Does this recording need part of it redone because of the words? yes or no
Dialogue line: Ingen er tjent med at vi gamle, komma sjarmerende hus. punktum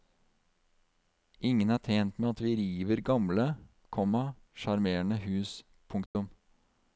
yes